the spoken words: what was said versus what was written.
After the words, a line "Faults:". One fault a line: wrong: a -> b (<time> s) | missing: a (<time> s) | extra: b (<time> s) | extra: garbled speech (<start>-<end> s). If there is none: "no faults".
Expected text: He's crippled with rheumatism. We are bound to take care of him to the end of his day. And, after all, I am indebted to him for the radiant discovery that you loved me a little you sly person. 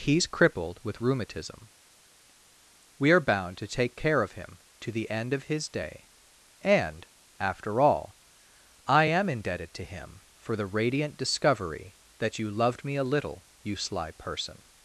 He's crippled with rheumatism. We are bound to take care of him to the end of his day. And, after all, I am indebted to him for the radiant discovery that you loved me a little you sly person.
Faults:
no faults